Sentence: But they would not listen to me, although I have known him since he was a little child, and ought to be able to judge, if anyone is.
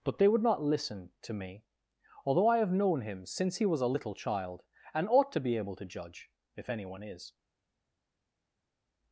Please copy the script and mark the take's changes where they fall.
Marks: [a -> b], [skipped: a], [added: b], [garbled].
But they would not listen to me, although I have known him since he was a little child, and ought to be able to judge, if anyone is.